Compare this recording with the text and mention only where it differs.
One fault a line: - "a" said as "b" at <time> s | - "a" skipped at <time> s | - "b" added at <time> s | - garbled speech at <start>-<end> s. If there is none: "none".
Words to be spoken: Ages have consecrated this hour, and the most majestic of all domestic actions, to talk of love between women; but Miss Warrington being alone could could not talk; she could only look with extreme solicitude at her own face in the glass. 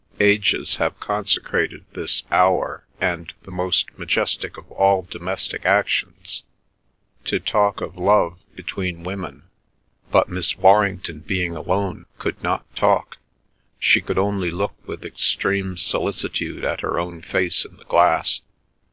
- "could" skipped at 12.4 s